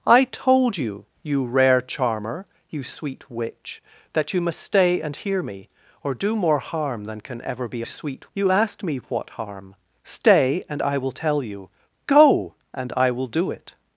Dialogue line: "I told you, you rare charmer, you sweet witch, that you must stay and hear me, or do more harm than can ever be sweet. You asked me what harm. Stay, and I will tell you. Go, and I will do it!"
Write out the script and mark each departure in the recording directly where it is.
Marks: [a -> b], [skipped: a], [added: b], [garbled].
"I told you, you rare charmer, you sweet witch, that you must stay and hear me, or do more harm than can ever be sweet. You asked me what harm. Stay, and I will tell you. Go, and I will do it!"